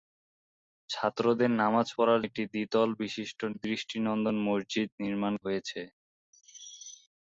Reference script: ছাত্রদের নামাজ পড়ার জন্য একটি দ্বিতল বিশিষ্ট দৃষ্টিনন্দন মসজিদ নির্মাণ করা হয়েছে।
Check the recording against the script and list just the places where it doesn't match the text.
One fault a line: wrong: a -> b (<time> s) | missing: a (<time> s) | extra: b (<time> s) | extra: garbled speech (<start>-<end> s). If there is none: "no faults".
missing: জন্য (2.2 s)
missing: করা (5.3 s)